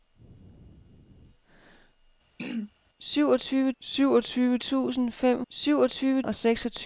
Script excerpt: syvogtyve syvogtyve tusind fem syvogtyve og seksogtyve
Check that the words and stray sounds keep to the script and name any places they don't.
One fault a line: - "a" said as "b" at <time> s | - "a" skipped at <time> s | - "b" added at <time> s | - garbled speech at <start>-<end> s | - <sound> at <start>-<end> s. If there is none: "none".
- throat clearing at 2.4-2.7 s